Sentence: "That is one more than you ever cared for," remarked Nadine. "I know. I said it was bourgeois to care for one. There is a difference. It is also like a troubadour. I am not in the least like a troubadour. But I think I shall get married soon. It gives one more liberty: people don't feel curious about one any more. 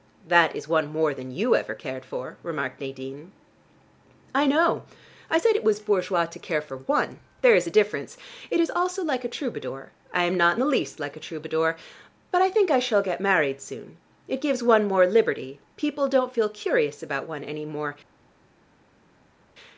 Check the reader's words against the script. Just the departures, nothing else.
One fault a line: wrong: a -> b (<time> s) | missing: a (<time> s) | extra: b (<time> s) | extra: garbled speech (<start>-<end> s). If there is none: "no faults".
no faults